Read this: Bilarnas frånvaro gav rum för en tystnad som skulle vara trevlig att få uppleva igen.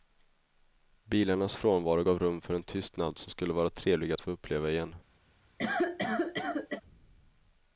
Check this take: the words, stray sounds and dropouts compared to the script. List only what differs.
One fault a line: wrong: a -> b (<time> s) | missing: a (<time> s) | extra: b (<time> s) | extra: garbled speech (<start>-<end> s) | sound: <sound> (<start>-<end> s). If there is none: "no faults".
sound: cough (5.6-6.8 s)